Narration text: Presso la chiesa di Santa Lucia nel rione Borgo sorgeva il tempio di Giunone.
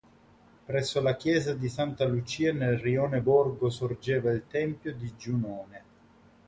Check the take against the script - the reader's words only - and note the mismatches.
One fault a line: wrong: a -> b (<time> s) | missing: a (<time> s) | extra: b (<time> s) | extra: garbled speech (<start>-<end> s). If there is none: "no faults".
no faults